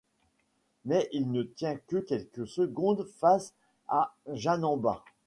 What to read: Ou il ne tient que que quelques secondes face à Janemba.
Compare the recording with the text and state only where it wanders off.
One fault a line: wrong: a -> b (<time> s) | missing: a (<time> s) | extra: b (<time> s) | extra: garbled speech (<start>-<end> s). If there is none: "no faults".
wrong: Ou -> Mais (0.8 s)
missing: que (2.0 s)